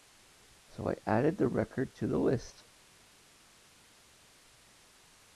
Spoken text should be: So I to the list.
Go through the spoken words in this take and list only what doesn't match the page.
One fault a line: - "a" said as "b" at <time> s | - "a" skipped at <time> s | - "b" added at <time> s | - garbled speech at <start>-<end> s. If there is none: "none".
- "added the record" added at 1.0 s